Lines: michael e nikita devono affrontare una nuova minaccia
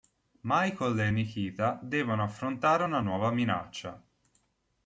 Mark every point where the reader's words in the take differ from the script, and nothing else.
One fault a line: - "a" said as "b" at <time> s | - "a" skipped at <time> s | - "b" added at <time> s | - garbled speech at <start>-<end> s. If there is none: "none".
none